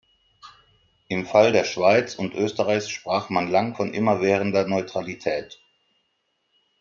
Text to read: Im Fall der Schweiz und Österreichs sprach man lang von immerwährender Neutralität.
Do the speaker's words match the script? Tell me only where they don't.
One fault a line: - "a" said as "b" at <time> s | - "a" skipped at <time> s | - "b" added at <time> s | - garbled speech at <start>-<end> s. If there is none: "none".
none